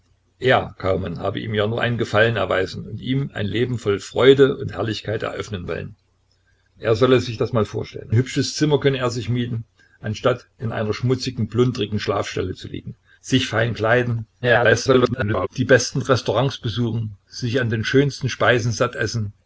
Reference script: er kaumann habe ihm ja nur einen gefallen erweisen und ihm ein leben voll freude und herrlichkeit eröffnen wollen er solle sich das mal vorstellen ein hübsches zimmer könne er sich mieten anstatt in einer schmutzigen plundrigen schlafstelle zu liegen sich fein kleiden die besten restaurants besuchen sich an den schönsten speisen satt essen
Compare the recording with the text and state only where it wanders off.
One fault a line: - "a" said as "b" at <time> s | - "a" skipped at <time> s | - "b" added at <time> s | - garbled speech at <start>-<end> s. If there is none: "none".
- "ein" skipped at 8.1 s
- garbled speech at 14.4-15.5 s